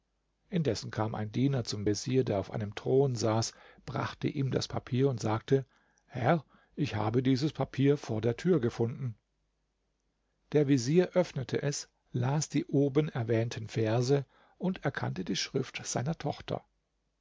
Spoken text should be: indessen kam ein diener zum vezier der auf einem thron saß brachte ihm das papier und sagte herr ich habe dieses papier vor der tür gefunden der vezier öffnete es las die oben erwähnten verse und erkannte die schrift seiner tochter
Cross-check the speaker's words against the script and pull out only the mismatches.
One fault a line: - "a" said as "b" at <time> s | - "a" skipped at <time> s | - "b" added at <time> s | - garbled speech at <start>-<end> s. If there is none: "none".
none